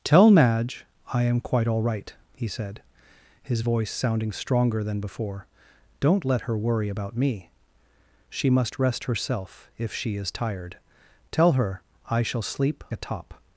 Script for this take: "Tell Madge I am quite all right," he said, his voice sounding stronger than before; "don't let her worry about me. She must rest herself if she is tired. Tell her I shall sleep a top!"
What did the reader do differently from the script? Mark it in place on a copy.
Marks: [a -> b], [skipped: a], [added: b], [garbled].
"Tell Madge I am quite all right," he said, his voice sounding stronger than before; "don't let her worry about me. She must rest herself if she is tired. Tell her I shall sleep a top!"